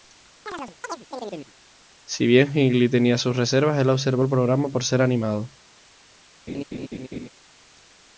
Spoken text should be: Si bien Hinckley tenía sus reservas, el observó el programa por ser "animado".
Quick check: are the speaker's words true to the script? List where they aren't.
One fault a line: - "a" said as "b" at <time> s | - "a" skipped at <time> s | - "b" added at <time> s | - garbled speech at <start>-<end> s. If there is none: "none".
none